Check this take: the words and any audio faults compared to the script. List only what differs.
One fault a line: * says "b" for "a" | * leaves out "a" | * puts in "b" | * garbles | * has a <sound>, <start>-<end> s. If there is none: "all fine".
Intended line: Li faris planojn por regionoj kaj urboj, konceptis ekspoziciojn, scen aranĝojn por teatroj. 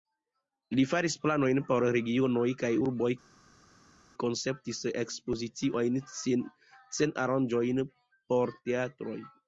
all fine